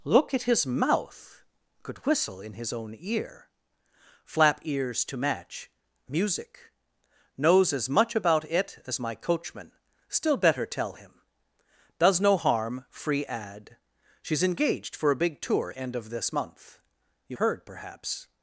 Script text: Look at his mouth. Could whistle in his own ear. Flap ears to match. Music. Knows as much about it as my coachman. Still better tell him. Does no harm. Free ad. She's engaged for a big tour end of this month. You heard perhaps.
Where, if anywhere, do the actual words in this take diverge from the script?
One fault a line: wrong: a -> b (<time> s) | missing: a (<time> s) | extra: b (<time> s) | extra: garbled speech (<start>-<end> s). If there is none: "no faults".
no faults